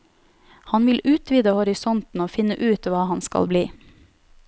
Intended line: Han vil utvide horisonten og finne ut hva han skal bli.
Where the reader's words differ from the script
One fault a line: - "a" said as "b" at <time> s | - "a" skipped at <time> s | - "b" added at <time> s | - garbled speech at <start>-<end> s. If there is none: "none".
none